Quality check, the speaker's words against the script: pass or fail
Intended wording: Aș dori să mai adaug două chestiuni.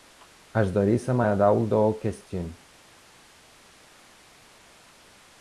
pass